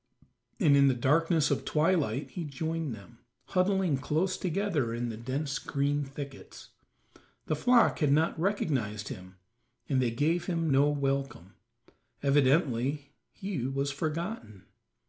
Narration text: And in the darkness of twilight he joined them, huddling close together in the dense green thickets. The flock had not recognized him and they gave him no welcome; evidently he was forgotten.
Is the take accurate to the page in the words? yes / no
yes